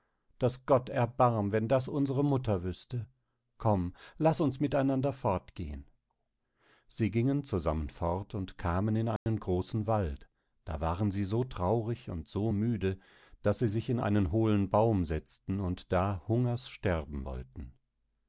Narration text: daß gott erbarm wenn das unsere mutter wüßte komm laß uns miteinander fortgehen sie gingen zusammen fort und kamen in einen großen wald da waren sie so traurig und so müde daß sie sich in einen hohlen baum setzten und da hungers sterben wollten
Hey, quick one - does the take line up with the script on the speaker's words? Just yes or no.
yes